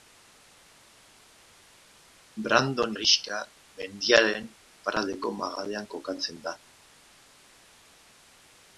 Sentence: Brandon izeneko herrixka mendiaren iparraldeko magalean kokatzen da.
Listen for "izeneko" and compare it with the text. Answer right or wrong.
wrong